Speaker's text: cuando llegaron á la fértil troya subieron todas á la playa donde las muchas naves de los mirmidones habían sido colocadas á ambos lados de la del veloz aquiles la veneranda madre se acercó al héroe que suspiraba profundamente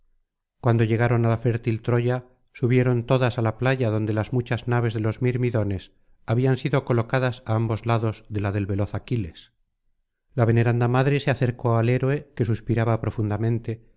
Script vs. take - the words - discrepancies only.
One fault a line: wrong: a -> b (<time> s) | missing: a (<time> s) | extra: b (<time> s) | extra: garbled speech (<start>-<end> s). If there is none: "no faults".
no faults